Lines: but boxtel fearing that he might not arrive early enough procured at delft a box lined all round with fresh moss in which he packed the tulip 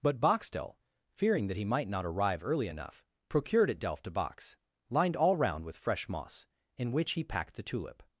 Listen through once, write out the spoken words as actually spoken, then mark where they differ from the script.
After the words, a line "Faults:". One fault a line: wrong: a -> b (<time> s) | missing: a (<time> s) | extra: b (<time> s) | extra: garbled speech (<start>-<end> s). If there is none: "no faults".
but boxtel fearing that he might not arrive early enough procured at delft a box lined all round with fresh moss in which he packed the tulip
Faults:
no faults